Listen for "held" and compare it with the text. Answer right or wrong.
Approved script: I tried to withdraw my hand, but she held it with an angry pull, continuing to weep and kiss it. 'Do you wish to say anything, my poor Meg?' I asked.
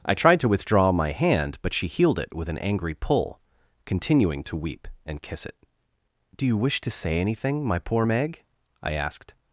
wrong